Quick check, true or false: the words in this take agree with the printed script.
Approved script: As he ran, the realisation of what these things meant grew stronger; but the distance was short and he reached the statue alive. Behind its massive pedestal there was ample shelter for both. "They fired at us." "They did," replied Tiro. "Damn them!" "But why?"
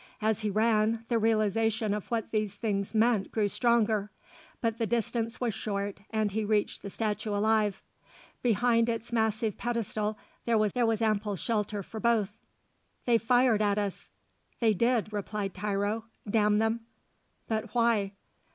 false